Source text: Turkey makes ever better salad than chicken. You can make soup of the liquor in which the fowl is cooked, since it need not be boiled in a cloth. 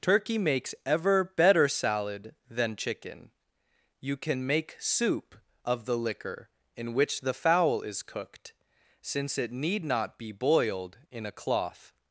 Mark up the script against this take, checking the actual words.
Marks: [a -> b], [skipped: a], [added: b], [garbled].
Turkey makes ever better salad than chicken. You can make soup of the liquor in which the fowl is cooked, since it need not be boiled in a cloth.